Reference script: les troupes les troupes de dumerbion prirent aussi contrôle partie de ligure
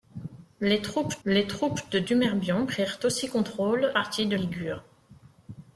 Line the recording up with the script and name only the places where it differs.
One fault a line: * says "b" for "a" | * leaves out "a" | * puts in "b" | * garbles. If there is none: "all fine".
all fine